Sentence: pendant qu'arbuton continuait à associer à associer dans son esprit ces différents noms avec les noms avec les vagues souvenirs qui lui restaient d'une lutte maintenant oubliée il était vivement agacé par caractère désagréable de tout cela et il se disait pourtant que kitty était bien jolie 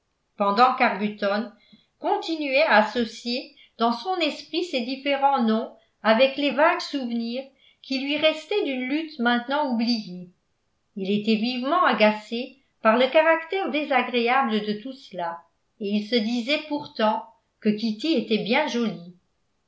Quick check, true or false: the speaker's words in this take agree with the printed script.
false